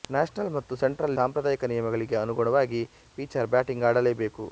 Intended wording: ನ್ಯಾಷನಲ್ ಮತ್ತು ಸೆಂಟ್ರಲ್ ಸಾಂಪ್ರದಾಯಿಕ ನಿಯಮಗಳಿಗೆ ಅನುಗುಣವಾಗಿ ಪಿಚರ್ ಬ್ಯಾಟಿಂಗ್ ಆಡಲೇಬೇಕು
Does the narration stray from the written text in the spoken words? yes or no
no